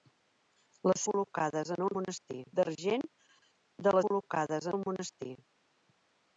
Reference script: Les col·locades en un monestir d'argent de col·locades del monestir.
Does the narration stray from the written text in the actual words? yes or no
no